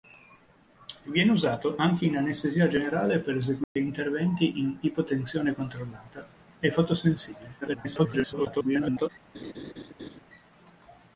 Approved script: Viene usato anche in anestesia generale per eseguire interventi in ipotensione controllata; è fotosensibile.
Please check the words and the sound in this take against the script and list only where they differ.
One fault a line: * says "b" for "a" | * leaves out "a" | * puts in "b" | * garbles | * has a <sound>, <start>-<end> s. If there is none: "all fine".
* has a dropout, 3.6-3.8 s
* garbles
* has a laugh, 9.3-10.2 s